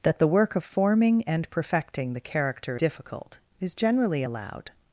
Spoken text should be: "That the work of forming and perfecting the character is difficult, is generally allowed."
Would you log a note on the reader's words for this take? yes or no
yes